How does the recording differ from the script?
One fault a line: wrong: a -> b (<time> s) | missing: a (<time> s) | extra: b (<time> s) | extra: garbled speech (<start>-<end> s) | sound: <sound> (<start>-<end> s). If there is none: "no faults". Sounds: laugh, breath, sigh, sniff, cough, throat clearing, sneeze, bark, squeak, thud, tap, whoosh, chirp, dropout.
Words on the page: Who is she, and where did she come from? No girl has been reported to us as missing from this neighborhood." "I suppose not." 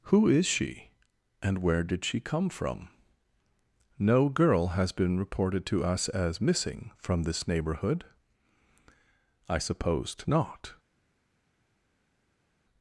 wrong: suppose -> supposed (9.6 s)